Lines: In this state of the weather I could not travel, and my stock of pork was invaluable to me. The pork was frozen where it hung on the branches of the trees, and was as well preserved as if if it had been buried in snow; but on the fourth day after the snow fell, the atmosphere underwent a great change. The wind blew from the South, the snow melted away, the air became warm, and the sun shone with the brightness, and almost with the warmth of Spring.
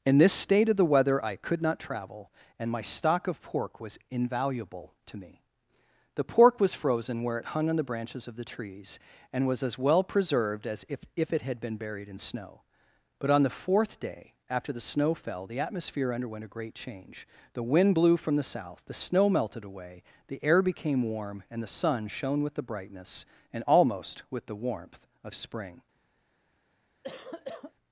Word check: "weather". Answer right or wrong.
right